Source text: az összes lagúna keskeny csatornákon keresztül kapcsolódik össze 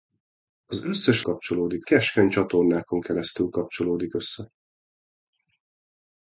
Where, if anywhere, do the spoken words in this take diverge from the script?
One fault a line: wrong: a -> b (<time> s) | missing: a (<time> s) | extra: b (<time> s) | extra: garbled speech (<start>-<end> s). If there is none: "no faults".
wrong: lagúna -> kapcsolódik (1.2 s)